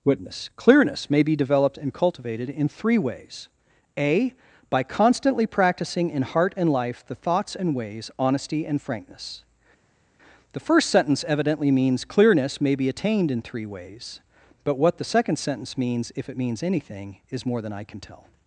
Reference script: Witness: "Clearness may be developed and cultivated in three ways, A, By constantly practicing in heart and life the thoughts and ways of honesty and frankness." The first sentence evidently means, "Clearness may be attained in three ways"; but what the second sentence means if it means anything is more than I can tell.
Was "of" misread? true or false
true